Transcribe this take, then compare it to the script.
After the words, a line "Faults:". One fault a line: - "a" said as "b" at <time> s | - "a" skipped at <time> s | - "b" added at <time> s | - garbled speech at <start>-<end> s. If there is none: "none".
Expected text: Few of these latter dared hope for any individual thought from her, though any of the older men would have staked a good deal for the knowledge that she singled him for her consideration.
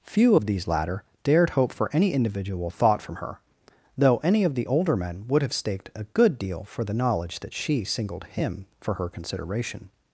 Few of these latter dared hope for any individual thought from her, though any of the older men would have staked a good deal for the knowledge that she singled him for her consideration.
Faults:
none